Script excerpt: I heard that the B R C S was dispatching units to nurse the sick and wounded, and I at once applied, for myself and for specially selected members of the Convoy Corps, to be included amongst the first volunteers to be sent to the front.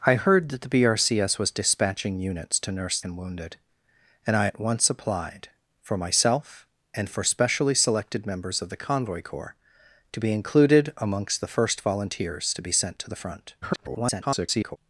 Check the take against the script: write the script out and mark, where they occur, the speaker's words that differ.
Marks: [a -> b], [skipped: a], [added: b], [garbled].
I heard that the B R C S was dispatching units to nurse [skipped: the sick] and wounded, and I at once applied, for myself and for specially selected members of the Convoy Corps, to be included amongst the first volunteers to be sent to the front. [garbled]